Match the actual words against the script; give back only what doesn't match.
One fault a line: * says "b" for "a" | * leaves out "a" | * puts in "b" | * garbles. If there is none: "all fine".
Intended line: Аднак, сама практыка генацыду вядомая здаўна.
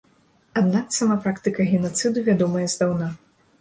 all fine